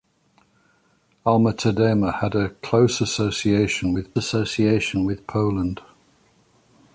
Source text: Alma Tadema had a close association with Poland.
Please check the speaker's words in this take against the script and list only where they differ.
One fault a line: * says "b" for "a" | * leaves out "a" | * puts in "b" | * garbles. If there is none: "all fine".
* puts in "association with"